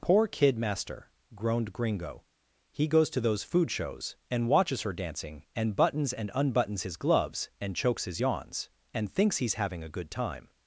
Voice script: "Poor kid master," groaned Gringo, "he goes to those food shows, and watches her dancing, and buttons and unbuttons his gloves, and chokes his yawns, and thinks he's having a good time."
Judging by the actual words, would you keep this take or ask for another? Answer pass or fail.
pass